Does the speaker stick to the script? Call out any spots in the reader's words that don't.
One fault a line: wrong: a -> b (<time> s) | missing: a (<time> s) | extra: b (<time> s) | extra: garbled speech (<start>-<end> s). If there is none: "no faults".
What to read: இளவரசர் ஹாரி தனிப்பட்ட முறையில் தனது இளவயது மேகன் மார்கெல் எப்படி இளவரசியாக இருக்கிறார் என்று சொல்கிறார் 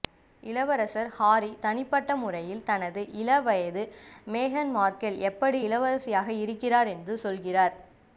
no faults